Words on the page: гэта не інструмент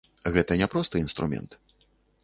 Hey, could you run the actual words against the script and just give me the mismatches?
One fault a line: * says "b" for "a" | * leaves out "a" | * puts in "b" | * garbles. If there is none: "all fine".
* puts in "проста"